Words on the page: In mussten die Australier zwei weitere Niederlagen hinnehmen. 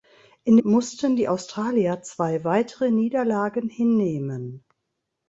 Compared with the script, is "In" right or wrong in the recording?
right